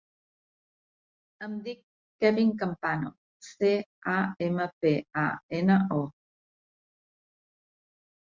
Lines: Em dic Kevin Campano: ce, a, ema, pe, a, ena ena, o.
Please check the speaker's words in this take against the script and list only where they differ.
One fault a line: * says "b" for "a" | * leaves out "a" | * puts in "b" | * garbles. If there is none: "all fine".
* leaves out "ena"